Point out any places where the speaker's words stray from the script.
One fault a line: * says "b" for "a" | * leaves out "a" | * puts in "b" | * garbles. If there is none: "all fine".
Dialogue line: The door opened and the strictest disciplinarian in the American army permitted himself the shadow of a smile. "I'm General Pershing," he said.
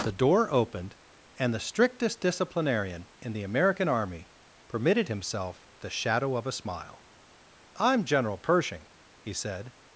all fine